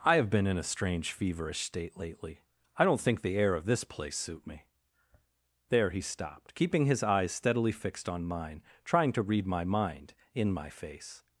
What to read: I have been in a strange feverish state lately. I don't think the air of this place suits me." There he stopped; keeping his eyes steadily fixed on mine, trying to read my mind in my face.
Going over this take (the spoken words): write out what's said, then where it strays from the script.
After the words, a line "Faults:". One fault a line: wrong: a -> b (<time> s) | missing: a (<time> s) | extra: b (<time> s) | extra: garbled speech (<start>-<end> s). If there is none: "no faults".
I have been in a strange feverish state lately. I don't think the air of this place suit me." There he stopped; keeping his eyes steadily fixed on mine, trying to read my mind in my face.
Faults:
wrong: suits -> suit (4.2 s)